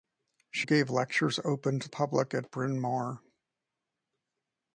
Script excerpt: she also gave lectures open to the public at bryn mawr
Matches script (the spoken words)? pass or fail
fail